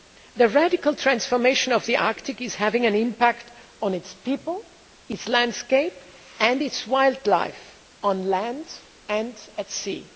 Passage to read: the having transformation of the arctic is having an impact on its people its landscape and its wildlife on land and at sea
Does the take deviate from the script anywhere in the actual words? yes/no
yes